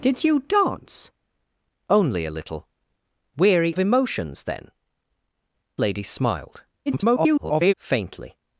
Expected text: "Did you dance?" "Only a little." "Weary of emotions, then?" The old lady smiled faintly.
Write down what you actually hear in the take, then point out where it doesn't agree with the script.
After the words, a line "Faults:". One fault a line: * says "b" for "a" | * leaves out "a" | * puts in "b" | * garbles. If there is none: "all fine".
"Did you dance?" "Only a little." "Weary emotions, then?" Lady smiled [garbled] faintly.
Faults:
* leaves out "of"
* leaves out "The old"
* garbles